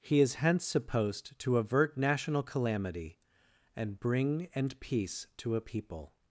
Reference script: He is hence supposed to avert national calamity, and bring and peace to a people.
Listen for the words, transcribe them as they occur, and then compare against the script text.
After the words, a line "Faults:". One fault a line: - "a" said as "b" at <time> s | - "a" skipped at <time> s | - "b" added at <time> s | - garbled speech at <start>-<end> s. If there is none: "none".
He is hence supposed to avert national calamity, and bring and peace to a people.
Faults:
none